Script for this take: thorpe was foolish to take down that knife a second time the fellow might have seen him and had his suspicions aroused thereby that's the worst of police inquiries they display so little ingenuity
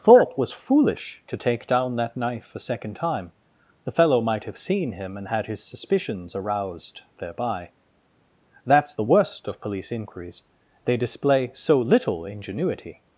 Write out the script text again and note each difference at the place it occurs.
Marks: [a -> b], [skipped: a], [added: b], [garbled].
thorpe was foolish to take down that knife a second time the fellow might have seen him and had his suspicions aroused thereby that's the worst of police inquiries they display so little ingenuity